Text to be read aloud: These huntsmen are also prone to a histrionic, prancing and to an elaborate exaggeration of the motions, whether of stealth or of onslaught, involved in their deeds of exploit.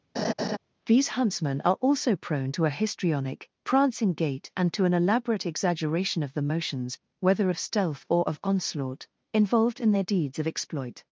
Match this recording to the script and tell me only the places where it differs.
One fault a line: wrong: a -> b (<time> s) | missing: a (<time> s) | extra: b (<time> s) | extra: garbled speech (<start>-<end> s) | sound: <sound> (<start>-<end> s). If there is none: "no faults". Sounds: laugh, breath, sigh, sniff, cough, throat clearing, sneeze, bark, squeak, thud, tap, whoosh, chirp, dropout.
sound: laugh (0.1-0.6 s)
extra: gait (4.1 s)